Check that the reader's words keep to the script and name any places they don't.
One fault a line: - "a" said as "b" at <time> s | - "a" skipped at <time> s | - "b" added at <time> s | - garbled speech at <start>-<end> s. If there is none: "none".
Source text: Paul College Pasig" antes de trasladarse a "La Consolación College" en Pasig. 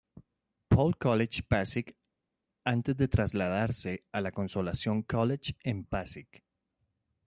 none